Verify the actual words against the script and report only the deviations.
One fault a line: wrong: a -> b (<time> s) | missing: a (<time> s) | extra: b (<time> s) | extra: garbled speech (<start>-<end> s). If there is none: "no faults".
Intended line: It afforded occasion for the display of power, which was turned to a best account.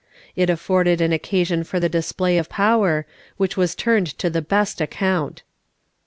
extra: an (1.0 s)
wrong: a -> the (4.3 s)